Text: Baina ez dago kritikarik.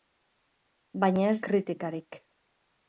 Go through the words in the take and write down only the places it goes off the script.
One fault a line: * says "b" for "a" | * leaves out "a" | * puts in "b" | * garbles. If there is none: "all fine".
* leaves out "dago"